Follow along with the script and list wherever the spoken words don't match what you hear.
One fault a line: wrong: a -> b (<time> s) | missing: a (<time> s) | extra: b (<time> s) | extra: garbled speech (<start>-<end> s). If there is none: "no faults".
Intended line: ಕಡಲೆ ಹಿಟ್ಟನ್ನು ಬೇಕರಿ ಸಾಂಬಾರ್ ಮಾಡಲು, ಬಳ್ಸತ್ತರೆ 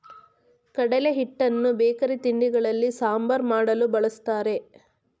extra: ತಿಂಡಿಗಳಲ್ಲಿ (2.2 s)